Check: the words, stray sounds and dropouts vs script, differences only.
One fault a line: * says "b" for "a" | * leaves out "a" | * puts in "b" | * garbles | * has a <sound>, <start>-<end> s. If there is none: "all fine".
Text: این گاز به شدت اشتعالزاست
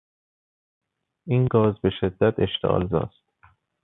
all fine